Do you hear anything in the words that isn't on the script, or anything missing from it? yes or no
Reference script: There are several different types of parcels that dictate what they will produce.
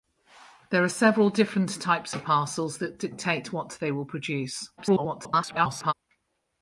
yes